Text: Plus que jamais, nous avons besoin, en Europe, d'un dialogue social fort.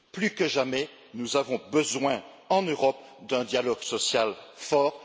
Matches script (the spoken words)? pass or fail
pass